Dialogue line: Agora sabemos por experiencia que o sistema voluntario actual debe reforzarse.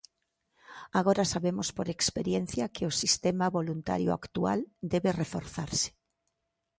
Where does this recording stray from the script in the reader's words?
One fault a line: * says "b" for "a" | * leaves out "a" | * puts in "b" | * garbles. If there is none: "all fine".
all fine